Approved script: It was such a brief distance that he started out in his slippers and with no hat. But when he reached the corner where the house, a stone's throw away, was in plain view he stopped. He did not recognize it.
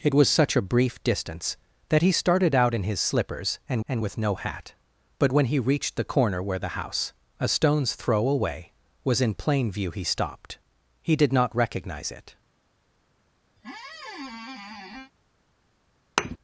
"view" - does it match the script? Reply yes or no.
yes